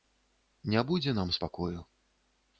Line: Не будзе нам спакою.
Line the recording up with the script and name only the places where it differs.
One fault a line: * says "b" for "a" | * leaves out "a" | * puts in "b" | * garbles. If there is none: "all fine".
all fine